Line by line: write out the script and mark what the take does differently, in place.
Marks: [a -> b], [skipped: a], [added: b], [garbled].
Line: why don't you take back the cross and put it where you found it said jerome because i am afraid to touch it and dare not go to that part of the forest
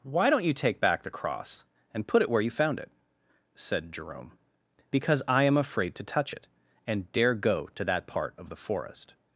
why don't you take back the cross and put it where you found it said jerome because i am afraid to touch it and dare [skipped: not] go to that part of the forest